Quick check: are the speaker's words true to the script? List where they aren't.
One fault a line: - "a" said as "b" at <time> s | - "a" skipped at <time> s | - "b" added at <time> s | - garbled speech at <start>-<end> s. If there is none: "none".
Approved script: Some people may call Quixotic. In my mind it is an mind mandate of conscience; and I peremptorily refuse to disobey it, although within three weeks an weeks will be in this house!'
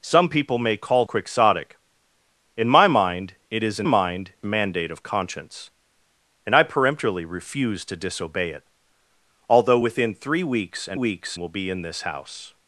none